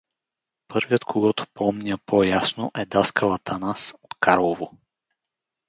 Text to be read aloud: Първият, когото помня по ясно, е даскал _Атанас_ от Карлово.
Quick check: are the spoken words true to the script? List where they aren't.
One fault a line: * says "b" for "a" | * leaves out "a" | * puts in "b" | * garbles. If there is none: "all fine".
all fine